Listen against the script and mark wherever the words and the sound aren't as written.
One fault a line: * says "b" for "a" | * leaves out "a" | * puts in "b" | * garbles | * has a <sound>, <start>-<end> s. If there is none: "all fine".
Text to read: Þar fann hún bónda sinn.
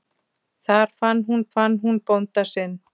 * puts in "fann hún"